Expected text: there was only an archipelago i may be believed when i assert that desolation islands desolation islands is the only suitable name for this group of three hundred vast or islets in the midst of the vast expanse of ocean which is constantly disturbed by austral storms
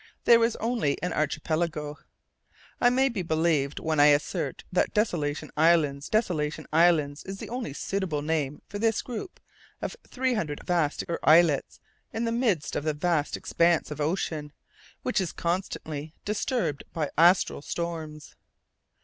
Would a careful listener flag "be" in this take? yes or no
no